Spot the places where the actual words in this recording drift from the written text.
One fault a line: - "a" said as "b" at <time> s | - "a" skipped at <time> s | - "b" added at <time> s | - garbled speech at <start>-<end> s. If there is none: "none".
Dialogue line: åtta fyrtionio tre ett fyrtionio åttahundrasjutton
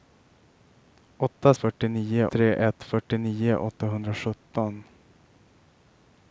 none